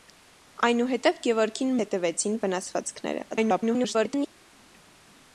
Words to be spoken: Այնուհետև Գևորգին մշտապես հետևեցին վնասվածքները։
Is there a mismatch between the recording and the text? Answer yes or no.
yes